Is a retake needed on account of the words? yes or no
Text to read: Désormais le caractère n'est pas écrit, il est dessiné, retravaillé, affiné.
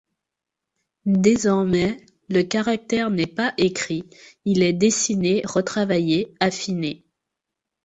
no